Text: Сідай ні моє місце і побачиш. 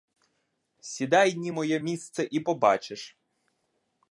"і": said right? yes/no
yes